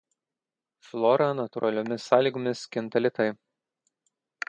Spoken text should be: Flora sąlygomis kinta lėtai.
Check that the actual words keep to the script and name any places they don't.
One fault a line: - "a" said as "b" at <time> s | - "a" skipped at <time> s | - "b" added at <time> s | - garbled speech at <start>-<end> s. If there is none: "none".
- "natūraliomis" added at 1.4 s